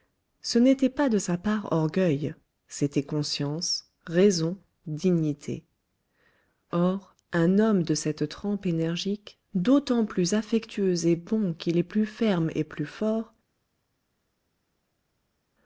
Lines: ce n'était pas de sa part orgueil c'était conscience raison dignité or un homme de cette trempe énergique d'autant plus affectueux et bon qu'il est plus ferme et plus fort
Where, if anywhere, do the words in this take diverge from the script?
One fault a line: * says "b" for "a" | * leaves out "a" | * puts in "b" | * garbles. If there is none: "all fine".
all fine